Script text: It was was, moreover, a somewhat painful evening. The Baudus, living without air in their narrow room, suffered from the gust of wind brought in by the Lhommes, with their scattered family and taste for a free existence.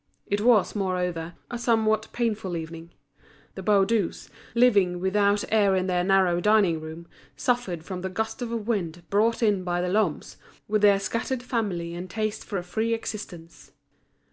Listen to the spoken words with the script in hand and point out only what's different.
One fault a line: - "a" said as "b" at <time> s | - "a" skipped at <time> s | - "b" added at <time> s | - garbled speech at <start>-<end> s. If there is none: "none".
- "was" skipped at 0.7 s
- "dining" added at 6.4 s